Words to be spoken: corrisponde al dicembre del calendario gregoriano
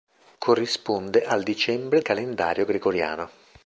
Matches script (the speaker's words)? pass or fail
fail